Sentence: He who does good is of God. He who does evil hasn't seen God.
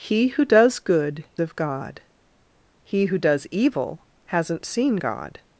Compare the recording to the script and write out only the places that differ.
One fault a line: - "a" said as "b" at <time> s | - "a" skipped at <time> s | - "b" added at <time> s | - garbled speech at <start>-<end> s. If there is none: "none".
- "is" skipped at 1.2 s